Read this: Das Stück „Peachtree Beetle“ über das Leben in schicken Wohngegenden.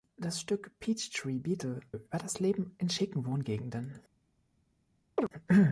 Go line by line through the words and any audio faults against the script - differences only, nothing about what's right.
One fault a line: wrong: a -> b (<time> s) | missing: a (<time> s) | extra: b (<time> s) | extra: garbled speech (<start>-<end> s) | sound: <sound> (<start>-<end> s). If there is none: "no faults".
sound: chirp (5.2-5.3 s)